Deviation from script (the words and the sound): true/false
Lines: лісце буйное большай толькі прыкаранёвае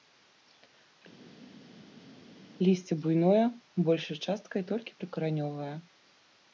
true